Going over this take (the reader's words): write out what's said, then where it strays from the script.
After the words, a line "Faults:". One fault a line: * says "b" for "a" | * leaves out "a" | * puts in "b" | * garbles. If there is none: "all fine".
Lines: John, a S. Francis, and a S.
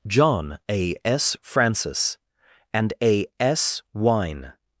John, a S. Francis, and a S. wine
Faults:
* puts in "wine"